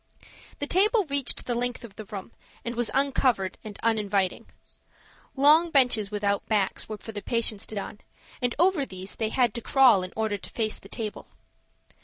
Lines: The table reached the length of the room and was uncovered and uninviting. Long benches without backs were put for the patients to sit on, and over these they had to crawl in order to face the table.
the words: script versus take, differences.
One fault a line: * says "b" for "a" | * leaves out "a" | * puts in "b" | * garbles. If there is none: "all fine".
* leaves out "put"
* leaves out "sit"